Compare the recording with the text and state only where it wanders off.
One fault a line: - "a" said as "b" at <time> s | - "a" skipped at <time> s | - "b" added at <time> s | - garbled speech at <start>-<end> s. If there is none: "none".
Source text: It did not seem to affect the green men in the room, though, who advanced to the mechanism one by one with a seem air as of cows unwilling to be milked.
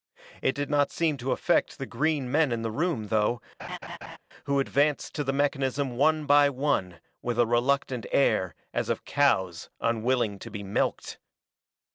- "seem" said as "reluctant" at 7.5 s